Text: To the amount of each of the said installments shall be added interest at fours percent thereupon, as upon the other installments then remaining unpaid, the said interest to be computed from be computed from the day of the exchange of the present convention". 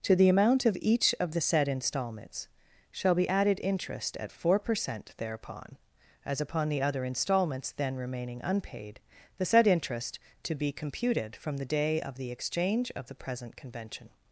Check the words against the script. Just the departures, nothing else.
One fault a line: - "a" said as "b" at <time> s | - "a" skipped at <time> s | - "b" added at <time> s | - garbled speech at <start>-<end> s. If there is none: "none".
- "fours" said as "four" at 4.3 s
- "be computed from" skipped at 11.6 s